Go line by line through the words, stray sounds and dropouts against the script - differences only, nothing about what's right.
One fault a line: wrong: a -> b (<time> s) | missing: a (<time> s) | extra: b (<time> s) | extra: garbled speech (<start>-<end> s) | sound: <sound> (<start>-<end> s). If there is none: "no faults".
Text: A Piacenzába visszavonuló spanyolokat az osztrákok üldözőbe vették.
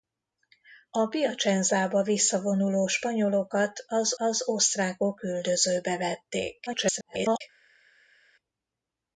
extra: az (4.1 s)
extra: garbled speech (6.7-7.4 s)